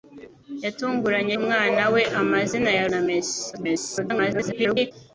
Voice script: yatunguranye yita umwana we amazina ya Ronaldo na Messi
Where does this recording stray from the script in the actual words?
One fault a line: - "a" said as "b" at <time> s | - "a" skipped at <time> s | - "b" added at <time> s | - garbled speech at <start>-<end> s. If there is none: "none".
- "yita" skipped at 1.4 s
- "Ronaldo" skipped at 2.8 s
- garbled speech at 3.5-4.9 s